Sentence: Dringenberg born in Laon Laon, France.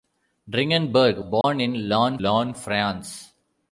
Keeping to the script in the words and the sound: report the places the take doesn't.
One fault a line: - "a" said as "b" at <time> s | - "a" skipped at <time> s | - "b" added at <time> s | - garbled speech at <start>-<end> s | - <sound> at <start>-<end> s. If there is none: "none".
- dropout at 1.4-1.4 s